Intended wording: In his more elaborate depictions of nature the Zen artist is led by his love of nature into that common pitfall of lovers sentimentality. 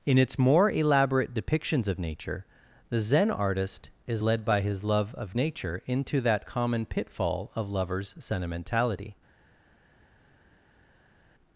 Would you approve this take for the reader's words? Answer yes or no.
no